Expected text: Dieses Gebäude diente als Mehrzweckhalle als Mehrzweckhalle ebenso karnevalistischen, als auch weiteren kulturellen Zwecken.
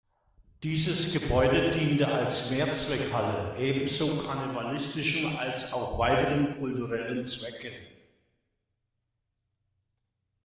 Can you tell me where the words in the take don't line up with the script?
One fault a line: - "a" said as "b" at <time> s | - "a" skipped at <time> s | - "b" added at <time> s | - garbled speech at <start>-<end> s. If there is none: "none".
- "als Mehrzweckhalle" skipped at 3.6 s